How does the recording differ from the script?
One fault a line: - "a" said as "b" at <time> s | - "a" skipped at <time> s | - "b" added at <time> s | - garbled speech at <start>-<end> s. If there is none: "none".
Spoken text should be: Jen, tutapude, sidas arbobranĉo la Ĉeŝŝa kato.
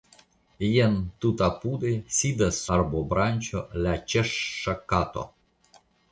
none